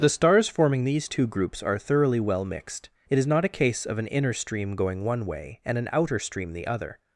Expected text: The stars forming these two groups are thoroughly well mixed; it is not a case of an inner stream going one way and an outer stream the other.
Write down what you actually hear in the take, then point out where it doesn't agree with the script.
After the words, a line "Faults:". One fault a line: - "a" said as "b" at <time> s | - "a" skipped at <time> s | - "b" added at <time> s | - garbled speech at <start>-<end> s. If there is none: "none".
The stars forming these two groups are thoroughly well mixed; it is not a case of an inner stream going one way and an outer stream the other.
Faults:
none